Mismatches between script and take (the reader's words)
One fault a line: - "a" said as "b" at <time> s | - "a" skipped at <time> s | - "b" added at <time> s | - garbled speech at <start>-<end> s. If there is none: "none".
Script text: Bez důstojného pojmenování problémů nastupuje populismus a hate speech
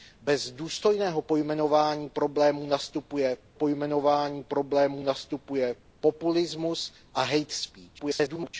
- "pojmenování problémů nastupuje" added at 3.5 s
- garbled speech at 8.0-8.5 s